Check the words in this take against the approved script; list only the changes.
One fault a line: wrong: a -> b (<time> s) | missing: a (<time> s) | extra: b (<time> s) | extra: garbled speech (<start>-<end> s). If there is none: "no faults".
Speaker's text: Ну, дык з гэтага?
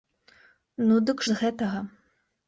no faults